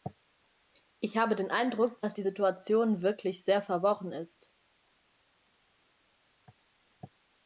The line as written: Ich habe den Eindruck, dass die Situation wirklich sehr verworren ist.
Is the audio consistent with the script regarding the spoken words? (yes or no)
yes